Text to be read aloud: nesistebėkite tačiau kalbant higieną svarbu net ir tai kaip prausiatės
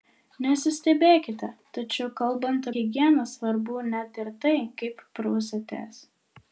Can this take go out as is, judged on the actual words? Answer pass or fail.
pass